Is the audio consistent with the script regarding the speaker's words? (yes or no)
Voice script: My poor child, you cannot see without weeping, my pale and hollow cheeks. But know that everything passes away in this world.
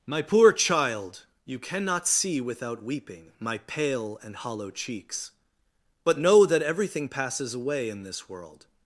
yes